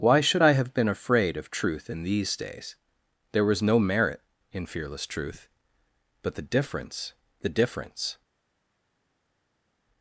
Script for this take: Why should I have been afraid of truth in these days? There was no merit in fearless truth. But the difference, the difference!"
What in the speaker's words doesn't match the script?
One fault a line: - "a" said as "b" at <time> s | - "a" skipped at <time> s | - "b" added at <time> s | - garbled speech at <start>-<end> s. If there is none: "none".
none